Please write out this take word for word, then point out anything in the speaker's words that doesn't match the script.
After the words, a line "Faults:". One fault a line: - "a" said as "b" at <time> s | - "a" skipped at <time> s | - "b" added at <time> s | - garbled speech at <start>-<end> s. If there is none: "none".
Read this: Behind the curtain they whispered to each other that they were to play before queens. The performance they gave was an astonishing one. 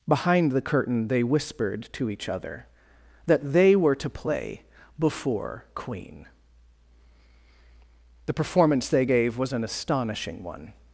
Behind the curtain they whispered to each other that they were to play before queen. The performance they gave was an astonishing one.
Faults:
- "queens" said as "queen" at 5.8 s